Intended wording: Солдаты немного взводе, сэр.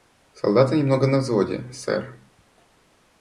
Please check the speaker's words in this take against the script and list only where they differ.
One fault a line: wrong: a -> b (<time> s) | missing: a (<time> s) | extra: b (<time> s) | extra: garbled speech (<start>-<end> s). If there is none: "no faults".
extra: на (1.1 s)